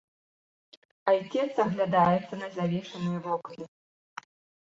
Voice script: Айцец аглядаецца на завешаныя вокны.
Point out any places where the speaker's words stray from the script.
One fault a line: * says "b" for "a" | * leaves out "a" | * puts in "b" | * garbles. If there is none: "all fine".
all fine